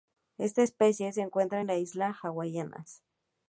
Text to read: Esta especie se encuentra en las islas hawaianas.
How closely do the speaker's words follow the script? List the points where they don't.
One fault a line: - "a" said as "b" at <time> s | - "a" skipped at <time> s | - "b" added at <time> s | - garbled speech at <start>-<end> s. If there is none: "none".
none